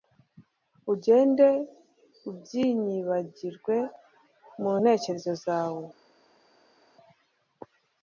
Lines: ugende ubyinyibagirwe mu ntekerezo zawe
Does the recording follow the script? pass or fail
pass